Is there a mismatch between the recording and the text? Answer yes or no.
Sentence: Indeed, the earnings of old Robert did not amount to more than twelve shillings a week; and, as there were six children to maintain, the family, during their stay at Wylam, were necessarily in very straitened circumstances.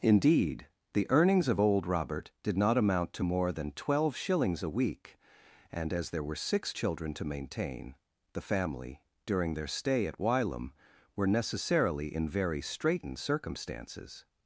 no